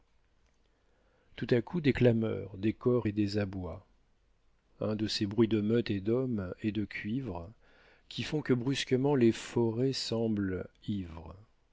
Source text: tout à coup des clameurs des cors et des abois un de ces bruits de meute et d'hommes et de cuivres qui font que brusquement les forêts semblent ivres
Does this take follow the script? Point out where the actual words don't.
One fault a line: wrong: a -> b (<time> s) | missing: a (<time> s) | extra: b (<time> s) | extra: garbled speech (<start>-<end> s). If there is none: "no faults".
no faults